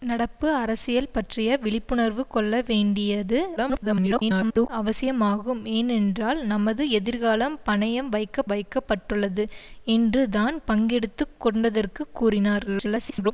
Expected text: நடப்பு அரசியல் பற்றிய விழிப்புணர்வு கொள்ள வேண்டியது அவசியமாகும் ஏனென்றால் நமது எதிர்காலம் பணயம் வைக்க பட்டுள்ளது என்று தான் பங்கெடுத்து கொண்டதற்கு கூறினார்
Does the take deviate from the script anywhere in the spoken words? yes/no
yes